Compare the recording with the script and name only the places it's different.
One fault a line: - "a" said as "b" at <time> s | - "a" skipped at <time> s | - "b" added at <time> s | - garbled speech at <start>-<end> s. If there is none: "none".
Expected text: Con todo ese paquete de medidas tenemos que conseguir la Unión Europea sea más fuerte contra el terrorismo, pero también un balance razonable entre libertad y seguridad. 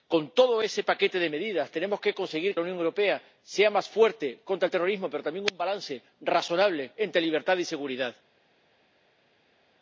none